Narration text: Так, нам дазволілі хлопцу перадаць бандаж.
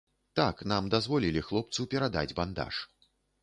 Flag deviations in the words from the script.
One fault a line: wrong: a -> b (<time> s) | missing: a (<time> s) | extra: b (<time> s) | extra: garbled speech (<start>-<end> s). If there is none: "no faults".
no faults